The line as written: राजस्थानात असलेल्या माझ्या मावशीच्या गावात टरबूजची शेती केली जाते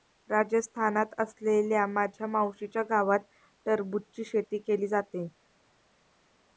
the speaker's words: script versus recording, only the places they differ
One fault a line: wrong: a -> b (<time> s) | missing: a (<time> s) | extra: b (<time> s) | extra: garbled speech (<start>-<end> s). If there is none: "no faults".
no faults